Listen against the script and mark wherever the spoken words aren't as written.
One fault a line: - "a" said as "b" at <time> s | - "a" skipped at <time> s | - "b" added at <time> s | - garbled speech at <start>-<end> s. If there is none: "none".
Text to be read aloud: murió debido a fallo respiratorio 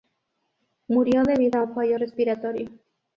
- "un" added at 1.6 s